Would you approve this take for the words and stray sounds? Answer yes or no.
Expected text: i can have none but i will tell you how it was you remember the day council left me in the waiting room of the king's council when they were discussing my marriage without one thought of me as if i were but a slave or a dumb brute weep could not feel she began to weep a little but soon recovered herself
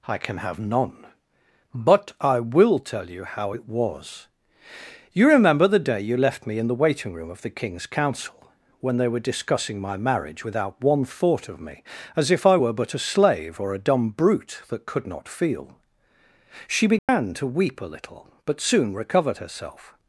no